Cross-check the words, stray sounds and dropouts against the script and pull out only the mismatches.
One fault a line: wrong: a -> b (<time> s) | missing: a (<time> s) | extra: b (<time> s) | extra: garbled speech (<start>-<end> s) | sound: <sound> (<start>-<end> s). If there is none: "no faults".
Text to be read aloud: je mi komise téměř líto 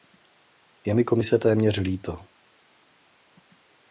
no faults